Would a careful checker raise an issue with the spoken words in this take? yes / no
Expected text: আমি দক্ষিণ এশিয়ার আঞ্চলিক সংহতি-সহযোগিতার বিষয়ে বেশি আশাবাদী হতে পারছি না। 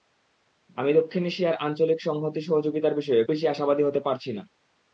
no